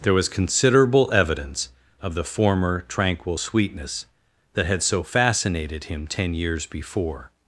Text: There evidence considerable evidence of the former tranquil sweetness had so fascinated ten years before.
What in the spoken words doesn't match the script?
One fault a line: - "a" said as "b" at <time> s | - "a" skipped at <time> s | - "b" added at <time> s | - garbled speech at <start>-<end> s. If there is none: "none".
- "evidence" said as "was" at 0.1 s
- "that" added at 4.5 s
- "him" added at 5.8 s